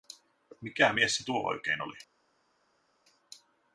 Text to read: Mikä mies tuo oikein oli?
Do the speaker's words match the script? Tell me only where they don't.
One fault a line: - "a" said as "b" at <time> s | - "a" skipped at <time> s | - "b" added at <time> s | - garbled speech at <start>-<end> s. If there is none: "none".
- "se" added at 1.2 s